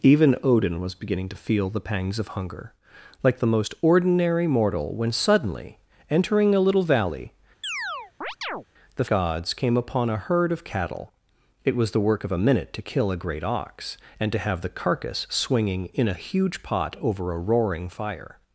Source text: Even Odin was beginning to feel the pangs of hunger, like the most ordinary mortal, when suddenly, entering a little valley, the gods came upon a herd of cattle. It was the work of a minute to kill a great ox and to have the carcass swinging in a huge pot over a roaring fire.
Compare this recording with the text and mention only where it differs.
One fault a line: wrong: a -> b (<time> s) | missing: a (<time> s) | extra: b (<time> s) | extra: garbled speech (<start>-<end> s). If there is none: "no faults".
no faults